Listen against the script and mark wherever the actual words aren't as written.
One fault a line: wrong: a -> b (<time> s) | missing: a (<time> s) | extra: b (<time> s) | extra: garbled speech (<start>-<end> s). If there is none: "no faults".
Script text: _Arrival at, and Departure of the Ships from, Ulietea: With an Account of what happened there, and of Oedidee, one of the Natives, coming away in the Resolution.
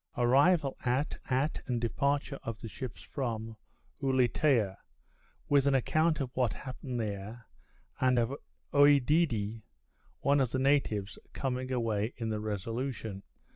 extra: at (1.3 s)